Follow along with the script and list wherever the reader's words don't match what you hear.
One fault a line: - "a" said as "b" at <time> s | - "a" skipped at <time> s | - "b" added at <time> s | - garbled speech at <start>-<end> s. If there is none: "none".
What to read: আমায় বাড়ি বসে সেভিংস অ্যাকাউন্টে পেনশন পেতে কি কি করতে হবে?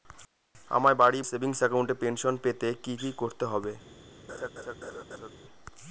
- "বসে" skipped at 1.2 s